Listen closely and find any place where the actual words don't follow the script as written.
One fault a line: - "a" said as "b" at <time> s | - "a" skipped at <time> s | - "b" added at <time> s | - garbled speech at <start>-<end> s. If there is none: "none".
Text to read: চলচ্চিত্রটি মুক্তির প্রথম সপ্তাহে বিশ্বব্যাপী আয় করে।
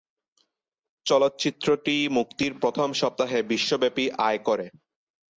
none